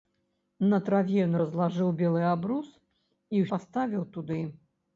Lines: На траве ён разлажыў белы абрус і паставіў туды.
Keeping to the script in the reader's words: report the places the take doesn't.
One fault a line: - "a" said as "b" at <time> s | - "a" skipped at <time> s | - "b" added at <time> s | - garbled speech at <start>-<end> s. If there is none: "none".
none